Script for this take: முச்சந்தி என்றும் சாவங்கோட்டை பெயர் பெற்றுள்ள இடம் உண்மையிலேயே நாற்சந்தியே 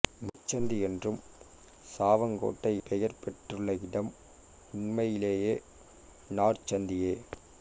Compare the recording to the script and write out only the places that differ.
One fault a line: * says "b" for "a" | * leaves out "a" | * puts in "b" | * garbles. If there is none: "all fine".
all fine